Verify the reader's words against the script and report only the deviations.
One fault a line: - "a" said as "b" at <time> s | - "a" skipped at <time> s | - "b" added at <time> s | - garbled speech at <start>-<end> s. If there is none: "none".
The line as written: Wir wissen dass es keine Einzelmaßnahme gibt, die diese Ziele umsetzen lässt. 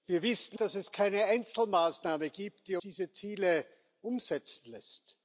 none